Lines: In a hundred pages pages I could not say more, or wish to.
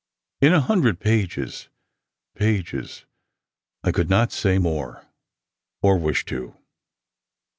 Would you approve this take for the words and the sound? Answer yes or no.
yes